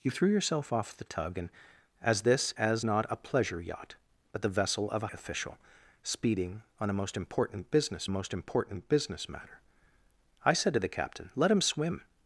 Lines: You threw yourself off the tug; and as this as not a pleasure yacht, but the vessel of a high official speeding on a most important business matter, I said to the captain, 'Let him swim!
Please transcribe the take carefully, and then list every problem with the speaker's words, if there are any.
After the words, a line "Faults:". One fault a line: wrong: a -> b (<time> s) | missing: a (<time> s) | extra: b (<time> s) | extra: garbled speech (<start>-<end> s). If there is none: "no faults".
You threw yourself off the tug; and as this as not a pleasure yacht, but the vessel of a official speeding on a most important business most important business matter, I said to the captain, 'Let him swim!
Faults:
missing: high (5.1 s)
extra: most important business (8.1 s)